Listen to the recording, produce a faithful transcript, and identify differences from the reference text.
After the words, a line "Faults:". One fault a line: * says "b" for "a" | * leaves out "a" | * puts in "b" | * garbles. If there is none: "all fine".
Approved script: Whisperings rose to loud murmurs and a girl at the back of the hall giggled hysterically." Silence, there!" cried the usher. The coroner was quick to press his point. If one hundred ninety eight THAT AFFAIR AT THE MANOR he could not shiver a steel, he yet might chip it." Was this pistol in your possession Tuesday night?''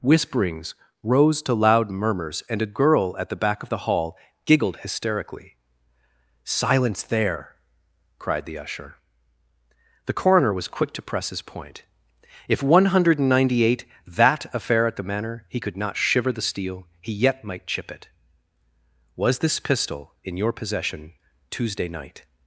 Whisperings rose to loud murmurs and a girl at the back of the hall giggled hysterically." Silence, there!" cried the usher. The coroner was quick to press his point. If one hundred ninety eight THAT AFFAIR AT THE MANOR he could not shiver the steel, he yet might chip it." Was this pistol in your possession Tuesday night?''
Faults:
* says "the" for "a"